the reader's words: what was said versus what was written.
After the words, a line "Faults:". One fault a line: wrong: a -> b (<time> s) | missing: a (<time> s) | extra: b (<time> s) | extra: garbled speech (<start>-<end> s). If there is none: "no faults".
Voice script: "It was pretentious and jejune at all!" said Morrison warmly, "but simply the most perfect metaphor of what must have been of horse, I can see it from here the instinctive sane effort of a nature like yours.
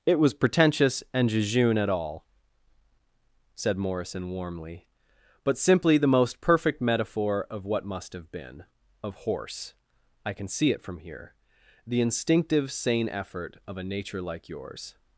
"It was pretentious and jejune at all!" said Morrison warmly, "but simply the most perfect metaphor of what must have been of horse, I can see it from here the instinctive sane effort of a nature like yours.
Faults:
no faults